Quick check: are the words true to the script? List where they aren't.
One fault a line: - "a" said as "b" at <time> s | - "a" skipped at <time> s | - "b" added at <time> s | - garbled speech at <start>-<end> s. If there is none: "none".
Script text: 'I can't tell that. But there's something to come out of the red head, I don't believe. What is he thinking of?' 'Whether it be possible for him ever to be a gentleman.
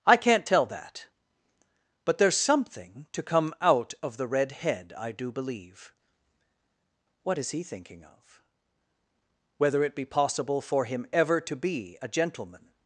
- "don't" said as "do" at 5.1 s